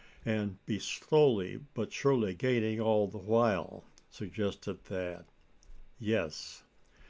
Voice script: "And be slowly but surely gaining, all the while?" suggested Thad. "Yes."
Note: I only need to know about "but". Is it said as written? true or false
true